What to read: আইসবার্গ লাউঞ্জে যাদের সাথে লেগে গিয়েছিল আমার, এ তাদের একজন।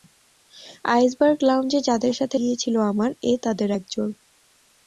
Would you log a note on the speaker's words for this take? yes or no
yes